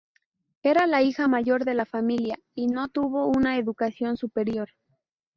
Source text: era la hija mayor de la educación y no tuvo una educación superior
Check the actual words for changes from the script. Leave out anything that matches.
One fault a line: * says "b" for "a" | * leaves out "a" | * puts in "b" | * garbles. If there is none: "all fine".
* says "familia" for "educación"